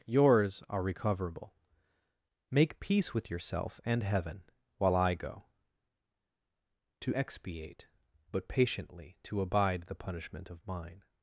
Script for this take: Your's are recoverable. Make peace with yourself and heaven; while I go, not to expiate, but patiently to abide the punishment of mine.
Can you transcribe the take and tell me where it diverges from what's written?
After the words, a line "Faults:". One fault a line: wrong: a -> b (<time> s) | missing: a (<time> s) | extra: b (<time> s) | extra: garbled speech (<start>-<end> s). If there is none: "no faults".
Your's are recoverable. Make peace with yourself and heaven; while I go, to expiate, but patiently to abide the punishment of mine.
Faults:
missing: not (5.4 s)